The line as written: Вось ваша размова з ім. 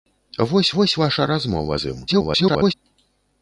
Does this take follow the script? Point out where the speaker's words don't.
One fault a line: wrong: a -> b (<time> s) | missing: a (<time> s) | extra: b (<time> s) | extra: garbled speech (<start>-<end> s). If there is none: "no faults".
extra: вось (0.8 s)
extra: garbled speech (2.1-2.7 s)